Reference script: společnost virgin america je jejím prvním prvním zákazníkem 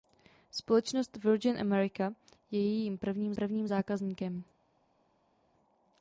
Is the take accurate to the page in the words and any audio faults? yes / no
yes